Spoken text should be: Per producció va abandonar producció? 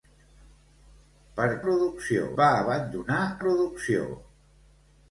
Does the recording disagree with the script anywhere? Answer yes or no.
no